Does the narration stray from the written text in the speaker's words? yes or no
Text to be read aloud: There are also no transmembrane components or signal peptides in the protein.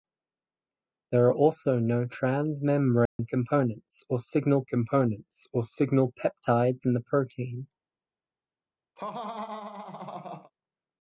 yes